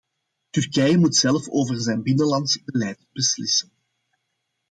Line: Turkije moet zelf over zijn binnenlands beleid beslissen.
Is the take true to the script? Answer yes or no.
yes